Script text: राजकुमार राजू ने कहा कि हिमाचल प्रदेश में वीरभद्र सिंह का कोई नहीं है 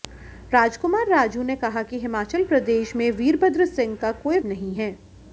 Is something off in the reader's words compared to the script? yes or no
no